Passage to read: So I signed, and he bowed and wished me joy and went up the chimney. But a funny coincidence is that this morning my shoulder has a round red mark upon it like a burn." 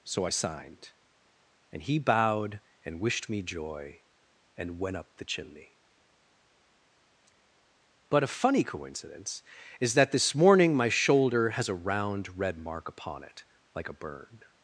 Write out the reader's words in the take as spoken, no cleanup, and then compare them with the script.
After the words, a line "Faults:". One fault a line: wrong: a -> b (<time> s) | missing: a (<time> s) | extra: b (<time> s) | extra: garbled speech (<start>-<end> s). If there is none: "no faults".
So I signed, and he bowed and wished me joy and went up the chimney. But a funny coincidence is that this morning my shoulder has a round red mark upon it like a burn."
Faults:
no faults